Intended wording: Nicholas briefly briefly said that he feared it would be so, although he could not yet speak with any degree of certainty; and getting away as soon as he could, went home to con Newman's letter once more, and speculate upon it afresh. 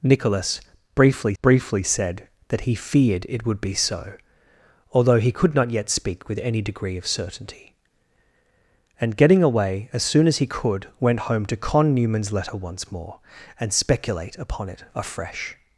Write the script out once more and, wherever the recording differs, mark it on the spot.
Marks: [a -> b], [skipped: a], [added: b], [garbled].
Nicholas briefly briefly said that he feared it would be so, although he could not yet speak with any degree of certainty; and getting away as soon as he could, went home to con Newman's letter once more, and speculate upon it afresh.